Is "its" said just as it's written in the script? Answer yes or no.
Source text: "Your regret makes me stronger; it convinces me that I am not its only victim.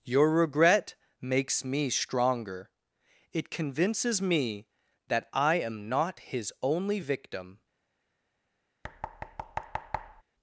no